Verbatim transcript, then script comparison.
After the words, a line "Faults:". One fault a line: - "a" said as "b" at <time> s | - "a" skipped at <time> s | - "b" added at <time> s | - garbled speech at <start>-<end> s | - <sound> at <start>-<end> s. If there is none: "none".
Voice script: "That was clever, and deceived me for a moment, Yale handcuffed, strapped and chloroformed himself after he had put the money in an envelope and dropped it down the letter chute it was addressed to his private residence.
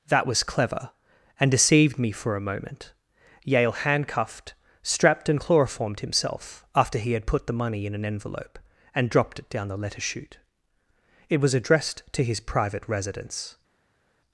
"That was clever, and deceived me for a moment, Yale handcuffed, strapped and chloroformed himself after he had put the money in an envelope and dropped it down the letter chute it was addressed to his private residence.
Faults:
none